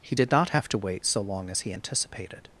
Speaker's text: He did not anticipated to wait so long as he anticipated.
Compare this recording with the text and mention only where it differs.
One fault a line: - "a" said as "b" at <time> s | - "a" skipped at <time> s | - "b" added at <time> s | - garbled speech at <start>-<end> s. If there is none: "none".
- "anticipated" said as "have" at 0.5 s